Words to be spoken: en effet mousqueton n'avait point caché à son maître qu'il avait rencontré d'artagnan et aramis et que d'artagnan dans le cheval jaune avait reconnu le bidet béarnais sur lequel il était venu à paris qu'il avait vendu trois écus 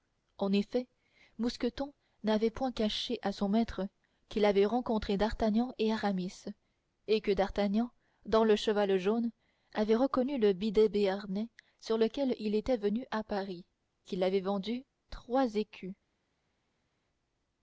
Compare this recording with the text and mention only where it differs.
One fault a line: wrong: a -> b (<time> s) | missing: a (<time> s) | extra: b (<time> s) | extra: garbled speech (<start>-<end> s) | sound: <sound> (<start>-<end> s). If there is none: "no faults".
no faults